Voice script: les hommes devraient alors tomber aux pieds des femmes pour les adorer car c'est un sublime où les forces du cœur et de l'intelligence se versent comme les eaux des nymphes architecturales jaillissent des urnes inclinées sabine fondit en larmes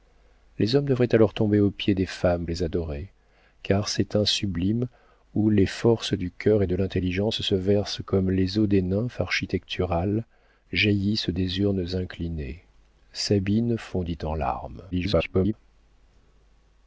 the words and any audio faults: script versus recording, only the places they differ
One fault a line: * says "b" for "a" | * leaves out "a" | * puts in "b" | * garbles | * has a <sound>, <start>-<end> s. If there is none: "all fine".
* leaves out "pour"
* garbles